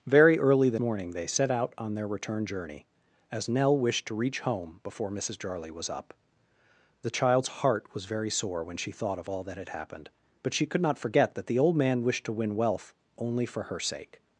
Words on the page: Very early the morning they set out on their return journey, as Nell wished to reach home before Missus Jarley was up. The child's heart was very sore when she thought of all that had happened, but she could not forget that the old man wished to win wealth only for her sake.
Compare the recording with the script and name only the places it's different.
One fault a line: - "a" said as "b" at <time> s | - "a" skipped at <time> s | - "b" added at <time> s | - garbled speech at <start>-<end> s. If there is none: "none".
none